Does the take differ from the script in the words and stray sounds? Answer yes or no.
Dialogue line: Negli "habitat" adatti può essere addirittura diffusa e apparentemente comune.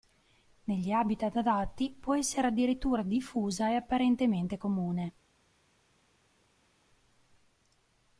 no